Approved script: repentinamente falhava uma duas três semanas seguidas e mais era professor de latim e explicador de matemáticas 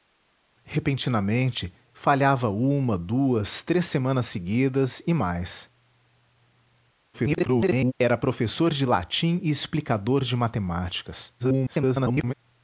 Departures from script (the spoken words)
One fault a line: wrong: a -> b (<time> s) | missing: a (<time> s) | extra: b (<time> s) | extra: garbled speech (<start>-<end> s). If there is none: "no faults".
extra: garbled speech (7.1-7.9 s)
extra: garbled speech (11.4-12.3 s)